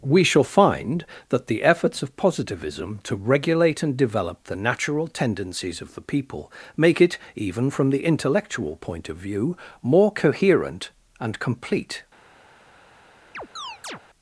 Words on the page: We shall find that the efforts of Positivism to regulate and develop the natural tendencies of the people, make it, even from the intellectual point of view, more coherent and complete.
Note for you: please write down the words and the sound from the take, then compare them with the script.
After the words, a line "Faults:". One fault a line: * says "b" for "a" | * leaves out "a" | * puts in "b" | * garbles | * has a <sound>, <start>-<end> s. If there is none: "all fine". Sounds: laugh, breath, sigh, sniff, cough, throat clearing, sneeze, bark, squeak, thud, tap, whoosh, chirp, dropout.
We shall find that the efforts of Positivism to regulate and develop the natural tendencies of the people, make it, even from the intellectual point of view, more coherent and complete.
Faults:
* has a chirp, 13.3-14.0 s